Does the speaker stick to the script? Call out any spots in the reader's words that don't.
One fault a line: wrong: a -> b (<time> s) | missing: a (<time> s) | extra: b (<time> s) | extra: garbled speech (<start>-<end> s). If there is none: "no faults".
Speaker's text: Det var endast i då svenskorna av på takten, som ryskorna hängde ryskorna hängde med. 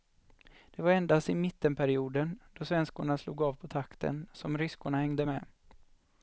extra: mittenperioden (1.4 s)
extra: slog (3.2 s)
missing: ryskorna hängde (5.2 s)